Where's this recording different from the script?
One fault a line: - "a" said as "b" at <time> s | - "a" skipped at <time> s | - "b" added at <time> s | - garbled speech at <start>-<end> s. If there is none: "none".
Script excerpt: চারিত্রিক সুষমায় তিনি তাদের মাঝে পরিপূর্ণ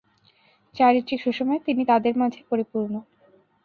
none